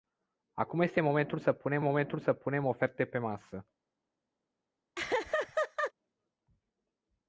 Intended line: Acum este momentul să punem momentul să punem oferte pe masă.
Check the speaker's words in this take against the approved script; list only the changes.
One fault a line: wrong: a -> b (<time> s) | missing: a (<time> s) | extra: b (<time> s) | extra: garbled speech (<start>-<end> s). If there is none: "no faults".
no faults